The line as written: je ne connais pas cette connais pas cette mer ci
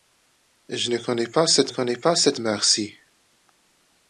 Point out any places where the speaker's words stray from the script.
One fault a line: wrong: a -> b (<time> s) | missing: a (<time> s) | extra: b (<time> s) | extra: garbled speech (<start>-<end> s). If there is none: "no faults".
no faults